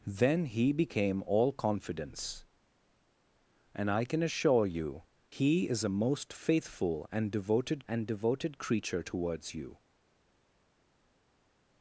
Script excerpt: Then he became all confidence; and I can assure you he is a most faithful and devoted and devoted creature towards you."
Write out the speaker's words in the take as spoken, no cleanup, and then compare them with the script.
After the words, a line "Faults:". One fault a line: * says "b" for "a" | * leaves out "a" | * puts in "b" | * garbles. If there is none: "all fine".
Then he became all confidence; and I can assure you he is a most faithful and devoted and devoted creature towards you."
Faults:
all fine